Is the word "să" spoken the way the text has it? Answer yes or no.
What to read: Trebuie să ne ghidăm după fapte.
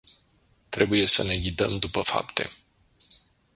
yes